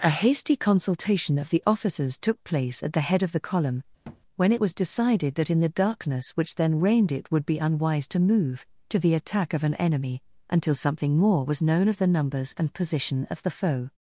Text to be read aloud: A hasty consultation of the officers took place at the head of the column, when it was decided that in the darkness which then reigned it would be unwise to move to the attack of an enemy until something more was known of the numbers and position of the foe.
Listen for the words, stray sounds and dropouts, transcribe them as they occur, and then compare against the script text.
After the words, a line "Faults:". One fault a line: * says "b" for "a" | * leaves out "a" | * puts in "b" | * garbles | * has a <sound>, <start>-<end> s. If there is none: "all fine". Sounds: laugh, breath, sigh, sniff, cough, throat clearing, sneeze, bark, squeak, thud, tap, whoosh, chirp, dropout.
A hasty consultation of the officers took place at the head of the column, when it was decided that in the darkness which then reigned it would be unwise to move to the attack of an enemy until something more was known of the numbers and position of the foe.
Faults:
* has a thud, 4.0-4.2 s